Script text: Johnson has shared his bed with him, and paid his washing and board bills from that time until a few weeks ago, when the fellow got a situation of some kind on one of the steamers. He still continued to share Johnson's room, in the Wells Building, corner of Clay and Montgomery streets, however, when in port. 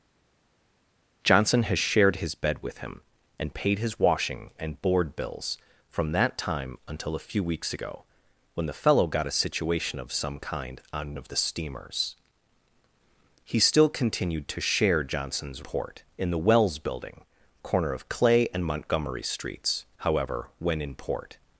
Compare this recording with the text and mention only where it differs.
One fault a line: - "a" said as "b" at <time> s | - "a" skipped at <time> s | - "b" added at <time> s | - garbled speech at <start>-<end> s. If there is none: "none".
- "one" skipped at 11.2 s
- "room" said as "port" at 15.6 s